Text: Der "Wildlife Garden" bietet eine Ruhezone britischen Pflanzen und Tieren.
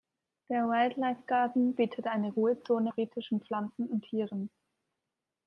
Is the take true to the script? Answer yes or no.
yes